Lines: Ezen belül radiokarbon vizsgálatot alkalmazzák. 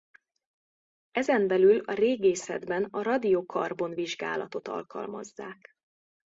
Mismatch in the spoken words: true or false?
true